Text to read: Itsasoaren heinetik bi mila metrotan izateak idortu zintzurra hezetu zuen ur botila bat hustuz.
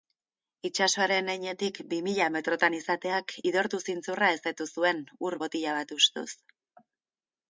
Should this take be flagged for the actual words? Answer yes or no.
no